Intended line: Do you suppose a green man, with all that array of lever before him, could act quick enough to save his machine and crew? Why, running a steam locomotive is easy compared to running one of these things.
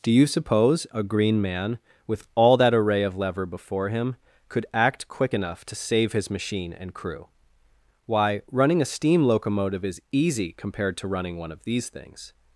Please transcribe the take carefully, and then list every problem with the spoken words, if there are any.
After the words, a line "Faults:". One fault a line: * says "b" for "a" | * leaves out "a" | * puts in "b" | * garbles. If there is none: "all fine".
Do you suppose a green man, with all that array of lever before him, could act quick enough to save his machine and crew? Why, running a steam locomotive is easy compared to running one of these things.
Faults:
all fine